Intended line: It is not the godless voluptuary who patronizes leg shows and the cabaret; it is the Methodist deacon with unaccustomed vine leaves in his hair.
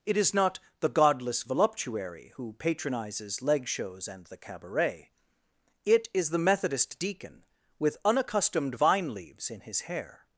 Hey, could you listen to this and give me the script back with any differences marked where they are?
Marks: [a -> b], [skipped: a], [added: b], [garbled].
It is not the godless voluptuary who patronizes leg shows and the cabaret; it is the Methodist deacon with unaccustomed vine leaves in his hair.